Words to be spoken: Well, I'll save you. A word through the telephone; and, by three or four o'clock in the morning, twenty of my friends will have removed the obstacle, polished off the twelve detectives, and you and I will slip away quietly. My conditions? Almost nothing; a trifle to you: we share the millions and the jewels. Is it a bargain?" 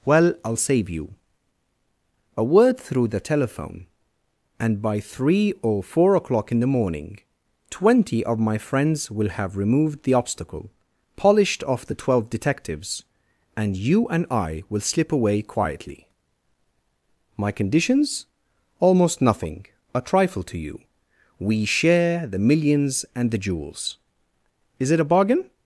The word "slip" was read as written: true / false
true